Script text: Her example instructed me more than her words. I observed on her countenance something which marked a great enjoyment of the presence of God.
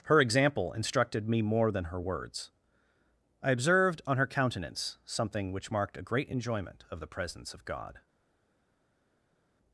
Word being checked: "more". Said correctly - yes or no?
yes